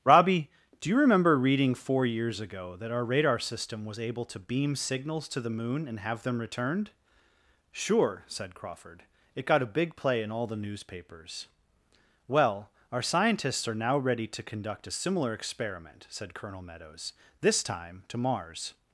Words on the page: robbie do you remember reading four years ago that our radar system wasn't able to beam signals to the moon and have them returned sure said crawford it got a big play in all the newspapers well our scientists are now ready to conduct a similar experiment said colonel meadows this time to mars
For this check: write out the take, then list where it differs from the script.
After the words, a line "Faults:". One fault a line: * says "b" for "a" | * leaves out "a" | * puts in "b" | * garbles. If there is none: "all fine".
robbie do you remember reading four years ago that our radar system was able to beam signals to the moon and have them returned sure said crawford it got a big play in all the newspapers well our scientists are now ready to conduct a similar experiment said colonel meadows this time to mars
Faults:
* says "was" for "wasn't"